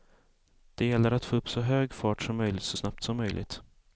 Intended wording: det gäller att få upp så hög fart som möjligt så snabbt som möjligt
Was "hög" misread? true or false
false